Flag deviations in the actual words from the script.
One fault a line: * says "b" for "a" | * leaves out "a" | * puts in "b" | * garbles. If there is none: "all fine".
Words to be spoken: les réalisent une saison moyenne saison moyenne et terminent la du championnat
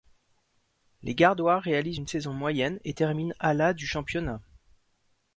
* puts in "gardois"
* leaves out "saison moyenne"
* puts in "à"